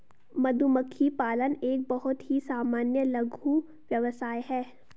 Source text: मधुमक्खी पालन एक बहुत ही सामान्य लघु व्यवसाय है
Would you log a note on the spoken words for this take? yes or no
no